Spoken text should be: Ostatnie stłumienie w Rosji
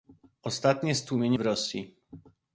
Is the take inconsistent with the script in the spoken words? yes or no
no